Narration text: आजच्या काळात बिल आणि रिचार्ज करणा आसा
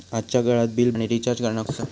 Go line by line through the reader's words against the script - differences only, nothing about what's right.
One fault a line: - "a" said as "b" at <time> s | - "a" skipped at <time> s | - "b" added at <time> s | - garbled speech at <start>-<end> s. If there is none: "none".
none